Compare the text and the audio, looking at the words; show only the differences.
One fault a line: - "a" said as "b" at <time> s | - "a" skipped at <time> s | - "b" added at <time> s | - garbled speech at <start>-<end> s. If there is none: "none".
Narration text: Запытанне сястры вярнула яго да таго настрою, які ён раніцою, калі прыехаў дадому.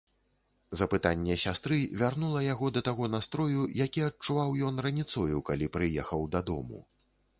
- "адчуваў" added at 4.1 s